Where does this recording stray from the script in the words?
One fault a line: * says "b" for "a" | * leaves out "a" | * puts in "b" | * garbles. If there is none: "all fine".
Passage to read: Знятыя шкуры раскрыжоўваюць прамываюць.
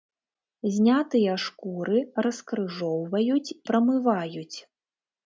all fine